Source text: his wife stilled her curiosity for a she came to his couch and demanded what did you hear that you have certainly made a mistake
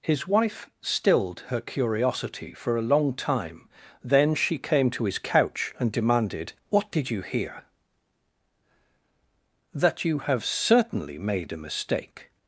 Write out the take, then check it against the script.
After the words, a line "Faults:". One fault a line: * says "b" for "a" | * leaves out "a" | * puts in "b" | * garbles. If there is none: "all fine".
his wife stilled her curiosity for a long time then she came to his couch and demanded what did you hear that you have certainly made a mistake
Faults:
* puts in "long time then"